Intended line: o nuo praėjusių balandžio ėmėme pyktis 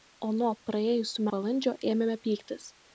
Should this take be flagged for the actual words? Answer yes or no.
no